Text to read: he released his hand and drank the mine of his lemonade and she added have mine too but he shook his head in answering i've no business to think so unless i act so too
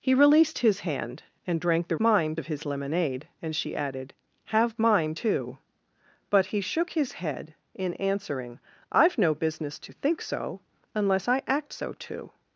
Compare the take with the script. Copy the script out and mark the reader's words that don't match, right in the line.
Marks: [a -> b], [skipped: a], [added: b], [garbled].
he released his hand and drank the mine of his lemonade and she added have mine too but he shook his head in answering i've no business to think so unless i act so too